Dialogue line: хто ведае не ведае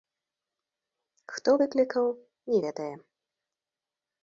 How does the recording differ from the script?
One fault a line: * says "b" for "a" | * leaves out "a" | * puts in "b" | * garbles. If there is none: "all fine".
* says "выклікаў" for "ведае"